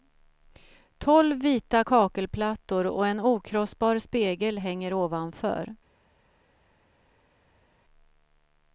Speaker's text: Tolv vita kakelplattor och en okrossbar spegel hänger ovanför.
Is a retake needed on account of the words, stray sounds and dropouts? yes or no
no